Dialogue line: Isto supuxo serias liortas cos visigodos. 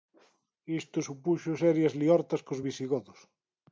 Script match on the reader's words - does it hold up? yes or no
yes